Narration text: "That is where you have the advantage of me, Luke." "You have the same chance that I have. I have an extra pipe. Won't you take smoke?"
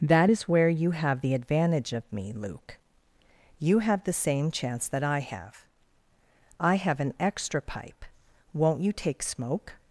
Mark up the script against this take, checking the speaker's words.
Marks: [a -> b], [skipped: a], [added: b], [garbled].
"That is where you have the advantage of me, Luke." "You have the same chance that I have. I have an extra pipe. Won't you take smoke?"